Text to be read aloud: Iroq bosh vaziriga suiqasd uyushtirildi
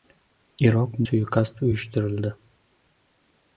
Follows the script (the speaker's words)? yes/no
no